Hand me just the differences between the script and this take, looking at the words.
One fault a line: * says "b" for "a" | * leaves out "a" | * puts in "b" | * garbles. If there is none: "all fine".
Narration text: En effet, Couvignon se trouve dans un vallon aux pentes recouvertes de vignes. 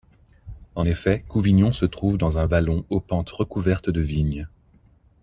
all fine